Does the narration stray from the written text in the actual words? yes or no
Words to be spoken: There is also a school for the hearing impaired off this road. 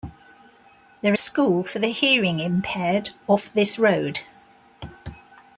yes